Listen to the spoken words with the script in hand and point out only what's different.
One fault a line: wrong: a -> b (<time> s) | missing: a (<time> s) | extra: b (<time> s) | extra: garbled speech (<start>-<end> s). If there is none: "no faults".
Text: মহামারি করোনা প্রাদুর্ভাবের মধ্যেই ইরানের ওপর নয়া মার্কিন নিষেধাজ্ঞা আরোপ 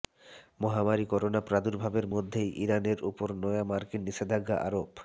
no faults